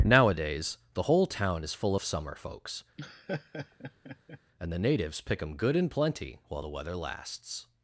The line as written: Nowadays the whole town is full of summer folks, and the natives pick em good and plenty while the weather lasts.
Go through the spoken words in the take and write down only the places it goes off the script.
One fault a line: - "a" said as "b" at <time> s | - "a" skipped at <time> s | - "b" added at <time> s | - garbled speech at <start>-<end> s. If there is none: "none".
none